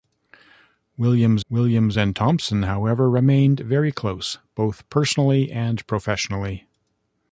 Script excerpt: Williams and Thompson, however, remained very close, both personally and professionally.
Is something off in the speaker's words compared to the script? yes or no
yes